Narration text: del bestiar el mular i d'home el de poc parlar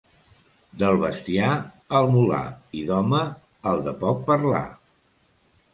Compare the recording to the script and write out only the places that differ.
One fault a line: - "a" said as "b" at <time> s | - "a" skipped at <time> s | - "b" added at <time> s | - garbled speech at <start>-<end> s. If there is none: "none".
none